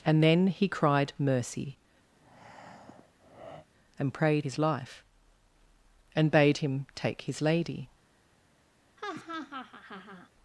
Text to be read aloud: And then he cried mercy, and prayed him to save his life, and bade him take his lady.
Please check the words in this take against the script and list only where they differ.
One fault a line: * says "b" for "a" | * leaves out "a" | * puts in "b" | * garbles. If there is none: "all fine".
* leaves out "him to save"